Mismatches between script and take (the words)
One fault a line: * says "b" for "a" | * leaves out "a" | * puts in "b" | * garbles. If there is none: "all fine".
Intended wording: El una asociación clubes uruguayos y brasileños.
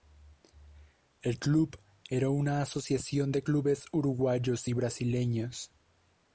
* puts in "club era"
* puts in "de"